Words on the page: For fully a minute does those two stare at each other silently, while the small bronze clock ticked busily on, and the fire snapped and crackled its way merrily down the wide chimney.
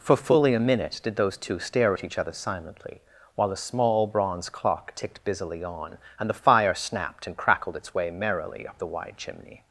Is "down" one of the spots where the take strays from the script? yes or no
yes